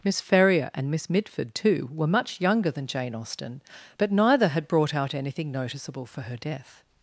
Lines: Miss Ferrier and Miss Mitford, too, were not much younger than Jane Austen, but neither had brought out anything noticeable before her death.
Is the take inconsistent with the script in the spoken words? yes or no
yes